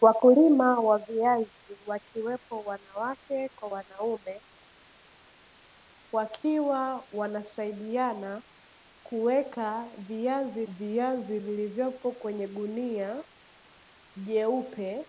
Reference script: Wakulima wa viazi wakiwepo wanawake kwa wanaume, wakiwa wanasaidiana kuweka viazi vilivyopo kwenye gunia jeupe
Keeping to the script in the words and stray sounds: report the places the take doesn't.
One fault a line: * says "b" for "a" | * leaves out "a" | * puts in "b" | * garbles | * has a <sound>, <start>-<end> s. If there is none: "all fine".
* puts in "viazi"